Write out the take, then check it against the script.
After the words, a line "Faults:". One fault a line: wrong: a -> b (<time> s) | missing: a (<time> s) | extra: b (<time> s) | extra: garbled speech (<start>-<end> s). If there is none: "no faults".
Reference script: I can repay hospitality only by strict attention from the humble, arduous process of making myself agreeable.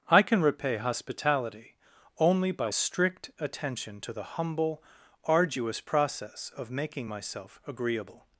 I can repay hospitality only by strict attention to the humble, arduous process of making myself agreeable.
Faults:
wrong: from -> to (4.0 s)